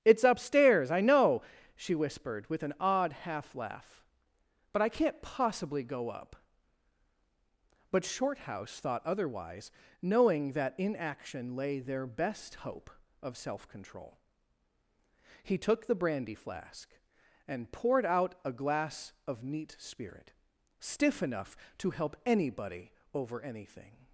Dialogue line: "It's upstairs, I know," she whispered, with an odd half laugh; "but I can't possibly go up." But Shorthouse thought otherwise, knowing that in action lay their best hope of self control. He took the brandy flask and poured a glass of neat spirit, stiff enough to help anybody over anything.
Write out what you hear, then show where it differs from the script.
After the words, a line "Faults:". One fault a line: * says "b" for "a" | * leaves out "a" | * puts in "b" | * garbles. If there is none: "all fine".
"It's upstairs, I know," she whispered, with an odd half laugh; "but I can't possibly go up." But Shorthouse thought otherwise, knowing that in action lay their best hope of self control. He took the brandy flask and poured out a glass of neat spirit, stiff enough to help anybody over anything.
Faults:
* puts in "out"